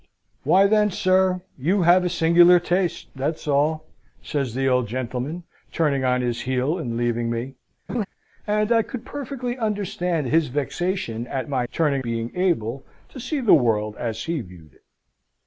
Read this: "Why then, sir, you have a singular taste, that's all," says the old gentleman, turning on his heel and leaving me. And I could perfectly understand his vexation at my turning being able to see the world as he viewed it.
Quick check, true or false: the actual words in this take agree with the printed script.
true